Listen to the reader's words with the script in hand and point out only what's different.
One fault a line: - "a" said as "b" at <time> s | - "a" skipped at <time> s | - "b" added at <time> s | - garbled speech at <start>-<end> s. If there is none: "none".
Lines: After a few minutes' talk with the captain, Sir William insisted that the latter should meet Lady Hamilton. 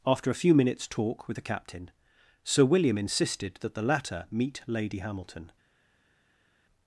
- "should" skipped at 4.3 s